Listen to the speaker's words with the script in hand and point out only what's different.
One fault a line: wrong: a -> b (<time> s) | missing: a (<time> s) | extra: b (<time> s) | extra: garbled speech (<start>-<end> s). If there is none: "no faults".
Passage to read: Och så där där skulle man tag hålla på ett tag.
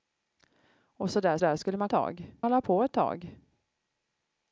no faults